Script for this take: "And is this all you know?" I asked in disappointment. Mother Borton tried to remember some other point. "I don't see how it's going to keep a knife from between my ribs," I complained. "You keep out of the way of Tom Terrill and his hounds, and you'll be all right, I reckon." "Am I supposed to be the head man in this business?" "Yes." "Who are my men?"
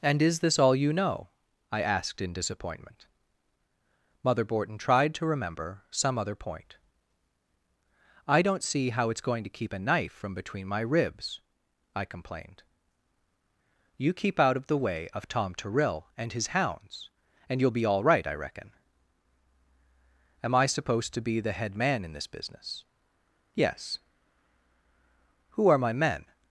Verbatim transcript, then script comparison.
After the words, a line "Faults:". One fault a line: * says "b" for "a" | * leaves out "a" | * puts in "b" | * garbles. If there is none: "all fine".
"And is this all you know?" I asked in disappointment. Mother Borton tried to remember some other point. "I don't see how it's going to keep a knife from between my ribs," I complained. "You keep out of the way of Tom Terrill and his hounds, and you'll be all right, I reckon." "Am I supposed to be the head man in this business?" "Yes." "Who are my men?"
Faults:
all fine